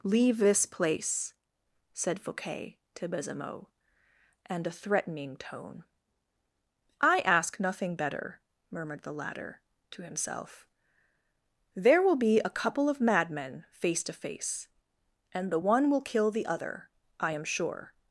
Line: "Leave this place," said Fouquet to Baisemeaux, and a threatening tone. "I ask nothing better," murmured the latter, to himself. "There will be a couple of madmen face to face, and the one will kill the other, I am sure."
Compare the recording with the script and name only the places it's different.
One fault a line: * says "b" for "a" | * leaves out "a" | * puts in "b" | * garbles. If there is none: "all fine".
all fine